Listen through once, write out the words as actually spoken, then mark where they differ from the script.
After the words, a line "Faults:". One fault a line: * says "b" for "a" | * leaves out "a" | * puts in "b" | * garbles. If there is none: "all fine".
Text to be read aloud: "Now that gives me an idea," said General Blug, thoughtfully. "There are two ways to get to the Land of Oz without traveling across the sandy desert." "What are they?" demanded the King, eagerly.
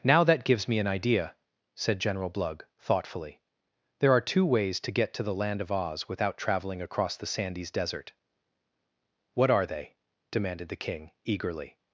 "Now that gives me an idea," said General Blug, thoughtfully. "There are two ways to get to the Land of Oz without traveling across the sandys desert." "What are they?" demanded the King, eagerly.
Faults:
* says "sandys" for "sandy"